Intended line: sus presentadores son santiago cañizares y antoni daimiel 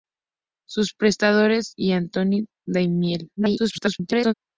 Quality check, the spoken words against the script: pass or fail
fail